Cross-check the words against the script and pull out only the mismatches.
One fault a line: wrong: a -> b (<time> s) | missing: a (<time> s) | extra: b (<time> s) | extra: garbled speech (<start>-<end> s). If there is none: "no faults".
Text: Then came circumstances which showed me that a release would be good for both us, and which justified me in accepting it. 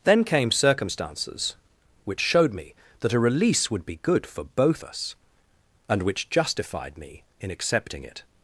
no faults